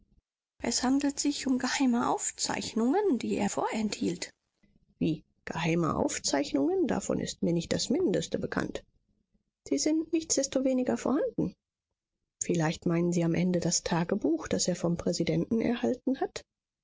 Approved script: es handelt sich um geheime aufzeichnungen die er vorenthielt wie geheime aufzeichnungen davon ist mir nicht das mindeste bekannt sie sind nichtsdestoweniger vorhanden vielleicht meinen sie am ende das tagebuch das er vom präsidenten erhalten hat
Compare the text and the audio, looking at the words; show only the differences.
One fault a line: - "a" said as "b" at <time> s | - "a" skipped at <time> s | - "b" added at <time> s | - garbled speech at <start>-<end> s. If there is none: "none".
none